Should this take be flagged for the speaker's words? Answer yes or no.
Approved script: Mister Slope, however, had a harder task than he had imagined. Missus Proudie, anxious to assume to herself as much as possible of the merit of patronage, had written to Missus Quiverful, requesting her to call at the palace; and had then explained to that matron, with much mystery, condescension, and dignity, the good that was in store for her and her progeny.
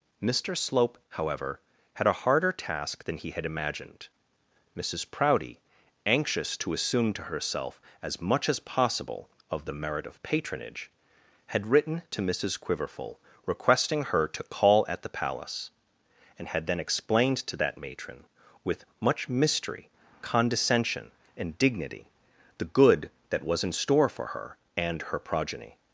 no